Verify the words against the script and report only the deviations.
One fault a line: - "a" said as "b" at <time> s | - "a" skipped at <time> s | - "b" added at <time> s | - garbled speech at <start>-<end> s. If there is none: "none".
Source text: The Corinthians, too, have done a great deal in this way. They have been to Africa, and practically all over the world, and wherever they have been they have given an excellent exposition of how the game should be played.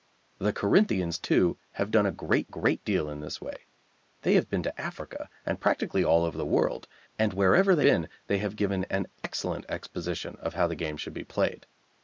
- "great" added at 2.5 s
- "have" skipped at 7.9 s